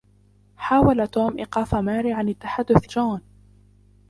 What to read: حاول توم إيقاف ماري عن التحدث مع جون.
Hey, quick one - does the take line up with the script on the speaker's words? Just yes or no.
no